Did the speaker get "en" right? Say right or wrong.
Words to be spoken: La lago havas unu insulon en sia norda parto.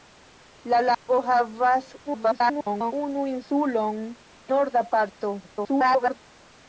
wrong